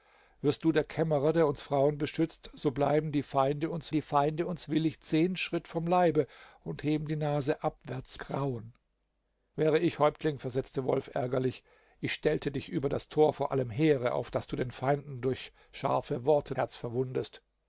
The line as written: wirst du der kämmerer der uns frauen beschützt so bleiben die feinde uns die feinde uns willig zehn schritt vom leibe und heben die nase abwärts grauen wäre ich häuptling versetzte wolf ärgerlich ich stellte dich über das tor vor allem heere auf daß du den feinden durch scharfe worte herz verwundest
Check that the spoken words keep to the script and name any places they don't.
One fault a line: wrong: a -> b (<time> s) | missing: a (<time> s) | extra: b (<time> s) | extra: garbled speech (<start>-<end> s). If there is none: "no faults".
no faults